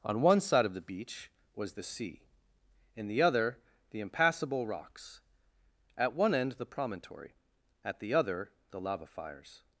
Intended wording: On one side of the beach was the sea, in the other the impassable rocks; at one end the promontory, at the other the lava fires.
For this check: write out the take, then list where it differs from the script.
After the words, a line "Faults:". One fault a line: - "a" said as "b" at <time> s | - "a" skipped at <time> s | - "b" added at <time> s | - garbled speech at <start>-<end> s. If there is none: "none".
On one side of the beach was the sea, in the other the impassable rocks; at one end the promontory, at the other the lava fires.
Faults:
none